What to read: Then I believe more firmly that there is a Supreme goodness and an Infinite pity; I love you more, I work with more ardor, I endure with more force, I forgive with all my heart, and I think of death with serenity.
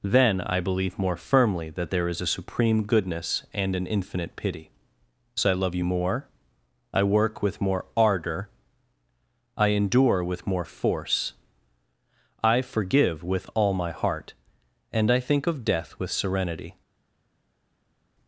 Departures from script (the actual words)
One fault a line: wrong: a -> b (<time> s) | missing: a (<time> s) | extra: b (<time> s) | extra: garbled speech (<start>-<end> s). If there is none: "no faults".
extra: so (5.4 s)